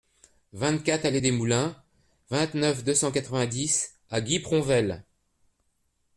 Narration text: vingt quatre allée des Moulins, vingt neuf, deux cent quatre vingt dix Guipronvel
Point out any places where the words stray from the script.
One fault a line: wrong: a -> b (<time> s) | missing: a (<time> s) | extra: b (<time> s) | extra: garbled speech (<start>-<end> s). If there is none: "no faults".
extra: à (4.1 s)